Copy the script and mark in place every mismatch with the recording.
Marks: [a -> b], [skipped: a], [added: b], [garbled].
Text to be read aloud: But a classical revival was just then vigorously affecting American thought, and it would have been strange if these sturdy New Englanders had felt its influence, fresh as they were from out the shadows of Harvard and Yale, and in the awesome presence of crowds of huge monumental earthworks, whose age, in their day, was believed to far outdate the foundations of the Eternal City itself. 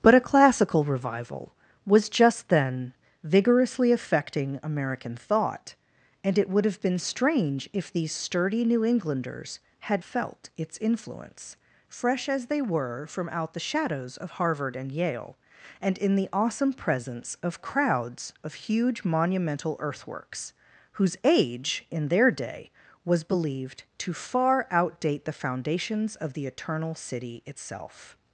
But a classical revival was just then vigorously affecting American thought, and it would have been strange if these sturdy New Englanders had felt its influence, fresh as they were from out the shadows of Harvard and Yale, and in the awesome presence of crowds of huge monumental earthworks, whose age, in their day, was believed to far outdate the foundations of the Eternal City itself.